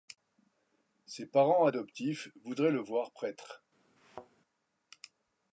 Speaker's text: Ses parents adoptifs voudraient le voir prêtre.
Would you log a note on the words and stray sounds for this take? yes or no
yes